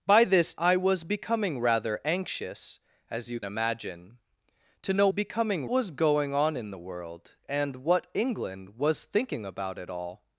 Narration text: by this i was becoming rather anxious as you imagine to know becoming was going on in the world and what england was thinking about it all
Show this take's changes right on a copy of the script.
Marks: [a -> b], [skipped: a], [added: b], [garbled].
by this i was becoming rather anxious as you imagine to know becoming was going on in the world and what england was thinking about it all